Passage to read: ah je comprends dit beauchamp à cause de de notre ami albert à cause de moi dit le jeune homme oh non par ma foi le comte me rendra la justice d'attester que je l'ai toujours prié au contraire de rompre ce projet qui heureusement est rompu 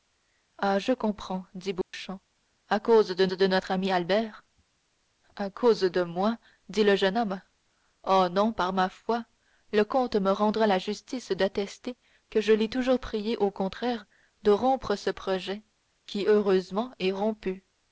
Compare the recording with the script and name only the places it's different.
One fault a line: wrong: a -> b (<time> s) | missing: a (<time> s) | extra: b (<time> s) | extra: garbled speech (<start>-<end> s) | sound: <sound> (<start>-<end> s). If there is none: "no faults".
sound: dropout (1.8-1.9 s)